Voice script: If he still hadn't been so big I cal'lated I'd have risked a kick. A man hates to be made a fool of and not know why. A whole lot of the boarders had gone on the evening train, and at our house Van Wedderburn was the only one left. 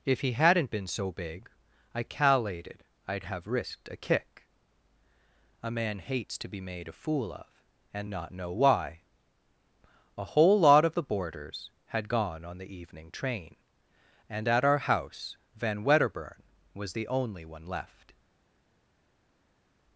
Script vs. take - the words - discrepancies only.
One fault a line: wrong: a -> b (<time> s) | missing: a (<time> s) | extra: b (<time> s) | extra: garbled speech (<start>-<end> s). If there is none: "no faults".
missing: still (0.3 s)